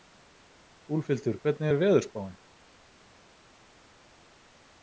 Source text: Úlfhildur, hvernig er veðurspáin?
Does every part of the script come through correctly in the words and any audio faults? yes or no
yes